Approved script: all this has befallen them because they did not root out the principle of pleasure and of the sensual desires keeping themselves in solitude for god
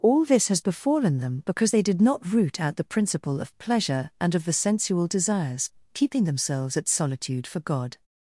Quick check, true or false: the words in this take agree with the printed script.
false